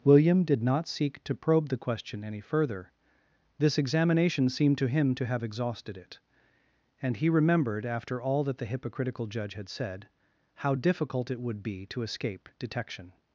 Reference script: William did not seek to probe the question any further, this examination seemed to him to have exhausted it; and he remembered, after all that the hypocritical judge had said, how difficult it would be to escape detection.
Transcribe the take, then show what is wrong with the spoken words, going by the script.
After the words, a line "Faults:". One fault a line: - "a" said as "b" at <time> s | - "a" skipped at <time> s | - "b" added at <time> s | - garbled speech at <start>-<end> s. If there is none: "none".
William did not seek to probe the question any further, this examination seemed to him to have exhausted it; and he remembered, after all that the hypocritical judge had said, how difficult it would be to escape detection.
Faults:
none